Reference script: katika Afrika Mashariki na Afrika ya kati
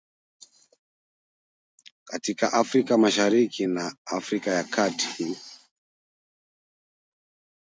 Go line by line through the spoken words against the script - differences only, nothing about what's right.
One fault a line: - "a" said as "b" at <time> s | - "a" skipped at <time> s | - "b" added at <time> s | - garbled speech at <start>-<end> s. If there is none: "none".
none